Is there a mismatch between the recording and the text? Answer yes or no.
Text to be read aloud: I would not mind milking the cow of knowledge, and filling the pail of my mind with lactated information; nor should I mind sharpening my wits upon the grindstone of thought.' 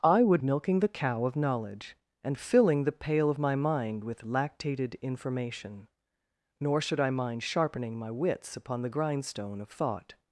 yes